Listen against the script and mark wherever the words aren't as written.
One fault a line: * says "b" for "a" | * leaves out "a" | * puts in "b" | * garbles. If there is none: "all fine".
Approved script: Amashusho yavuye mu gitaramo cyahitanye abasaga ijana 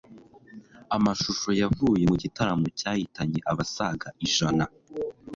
all fine